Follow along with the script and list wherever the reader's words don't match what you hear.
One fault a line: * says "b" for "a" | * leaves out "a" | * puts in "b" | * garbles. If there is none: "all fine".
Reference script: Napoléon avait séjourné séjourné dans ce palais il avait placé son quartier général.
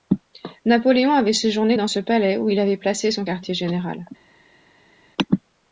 * leaves out "séjourné"
* puts in "où"